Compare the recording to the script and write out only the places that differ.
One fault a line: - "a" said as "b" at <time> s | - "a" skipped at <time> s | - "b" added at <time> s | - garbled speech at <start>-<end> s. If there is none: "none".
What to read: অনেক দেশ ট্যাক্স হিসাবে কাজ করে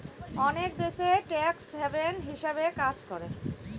- "হ্যাভেন" added at 1.7 s